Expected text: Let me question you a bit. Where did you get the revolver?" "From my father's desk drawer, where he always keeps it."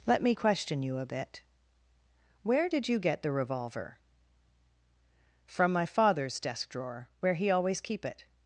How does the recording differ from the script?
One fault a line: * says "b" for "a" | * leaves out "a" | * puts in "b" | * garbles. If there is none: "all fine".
* says "keep" for "keeps"